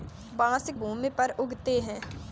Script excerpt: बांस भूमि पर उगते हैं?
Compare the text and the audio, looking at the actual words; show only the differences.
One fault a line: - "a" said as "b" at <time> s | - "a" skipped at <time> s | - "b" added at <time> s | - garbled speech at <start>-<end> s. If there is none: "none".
none